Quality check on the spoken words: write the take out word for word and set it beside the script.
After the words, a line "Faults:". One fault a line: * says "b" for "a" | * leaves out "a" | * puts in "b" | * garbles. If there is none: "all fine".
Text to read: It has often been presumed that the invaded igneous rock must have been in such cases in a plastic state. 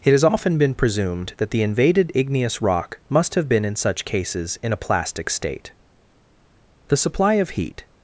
It has often been presumed that the invaded igneous rock must have been in such cases in a plastic state. The supply of heat
Faults:
* puts in "The supply of heat"